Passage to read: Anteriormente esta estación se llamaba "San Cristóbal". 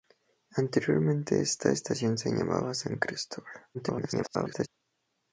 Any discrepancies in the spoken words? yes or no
yes